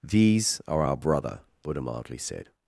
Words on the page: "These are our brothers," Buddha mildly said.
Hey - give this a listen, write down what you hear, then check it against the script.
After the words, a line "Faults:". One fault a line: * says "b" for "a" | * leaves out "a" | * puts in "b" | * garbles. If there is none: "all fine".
"These are our brother," Buddha mildly said.
Faults:
* says "brother" for "brothers"